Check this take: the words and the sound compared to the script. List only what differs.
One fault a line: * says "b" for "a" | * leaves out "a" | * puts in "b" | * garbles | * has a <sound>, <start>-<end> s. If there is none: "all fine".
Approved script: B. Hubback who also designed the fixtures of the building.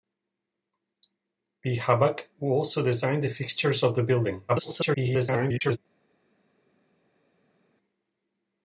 * garbles